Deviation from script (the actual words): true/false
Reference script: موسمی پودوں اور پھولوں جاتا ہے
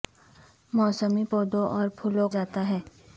false